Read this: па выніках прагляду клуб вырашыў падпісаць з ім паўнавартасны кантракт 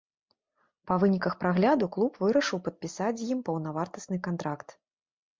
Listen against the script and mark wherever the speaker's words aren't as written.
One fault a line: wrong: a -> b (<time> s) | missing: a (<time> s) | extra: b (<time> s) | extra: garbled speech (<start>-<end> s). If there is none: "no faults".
no faults